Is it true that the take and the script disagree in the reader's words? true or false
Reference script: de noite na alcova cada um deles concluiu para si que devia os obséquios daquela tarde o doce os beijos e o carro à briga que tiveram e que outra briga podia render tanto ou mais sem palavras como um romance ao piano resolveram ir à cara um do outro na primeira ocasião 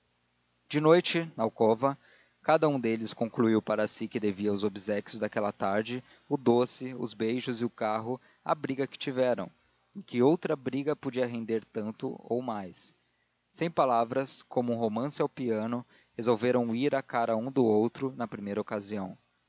false